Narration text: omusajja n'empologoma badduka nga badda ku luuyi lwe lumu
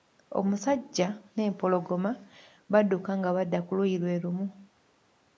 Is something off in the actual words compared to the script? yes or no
no